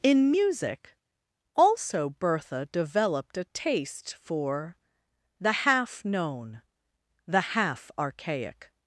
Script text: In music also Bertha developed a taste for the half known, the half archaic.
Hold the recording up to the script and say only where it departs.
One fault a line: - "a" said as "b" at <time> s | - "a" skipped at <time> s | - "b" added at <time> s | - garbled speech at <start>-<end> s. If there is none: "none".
none